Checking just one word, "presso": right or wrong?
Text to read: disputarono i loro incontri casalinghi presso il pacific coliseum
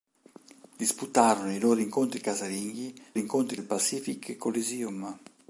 wrong